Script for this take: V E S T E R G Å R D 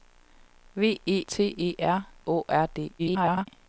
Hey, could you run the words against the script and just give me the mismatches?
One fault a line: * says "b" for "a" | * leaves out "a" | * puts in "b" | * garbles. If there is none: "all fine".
* leaves out "S"
* leaves out "G"
* garbles